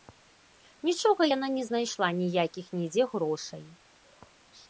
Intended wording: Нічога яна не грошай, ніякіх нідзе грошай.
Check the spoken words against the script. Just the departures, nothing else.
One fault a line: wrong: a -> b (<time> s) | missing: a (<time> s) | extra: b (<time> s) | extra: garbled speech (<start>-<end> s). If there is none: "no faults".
wrong: грошай -> знайшла (1.7 s)